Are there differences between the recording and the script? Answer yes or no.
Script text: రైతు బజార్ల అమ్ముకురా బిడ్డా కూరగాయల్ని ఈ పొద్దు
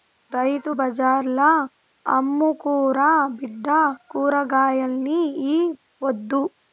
no